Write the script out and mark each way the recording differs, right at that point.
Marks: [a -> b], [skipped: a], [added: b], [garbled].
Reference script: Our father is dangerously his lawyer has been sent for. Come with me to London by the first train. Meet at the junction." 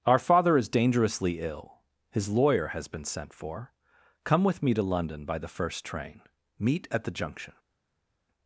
Our father is dangerously [added: ill] his lawyer has been sent for. Come with me to London by the first train. Meet at the junction."